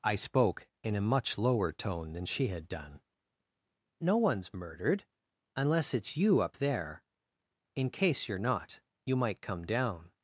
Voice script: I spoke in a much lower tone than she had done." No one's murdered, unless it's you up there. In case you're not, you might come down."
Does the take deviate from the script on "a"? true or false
false